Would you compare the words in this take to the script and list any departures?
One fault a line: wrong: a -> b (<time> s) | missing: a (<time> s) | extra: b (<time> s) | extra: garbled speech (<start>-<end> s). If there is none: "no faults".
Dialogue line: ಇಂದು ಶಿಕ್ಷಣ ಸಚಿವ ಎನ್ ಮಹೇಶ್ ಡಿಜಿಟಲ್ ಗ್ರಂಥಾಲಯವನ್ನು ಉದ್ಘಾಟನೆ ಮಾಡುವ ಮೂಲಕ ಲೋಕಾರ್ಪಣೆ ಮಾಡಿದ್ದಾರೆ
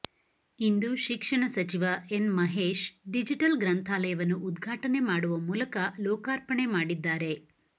no faults